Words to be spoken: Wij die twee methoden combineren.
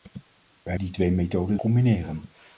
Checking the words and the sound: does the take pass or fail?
pass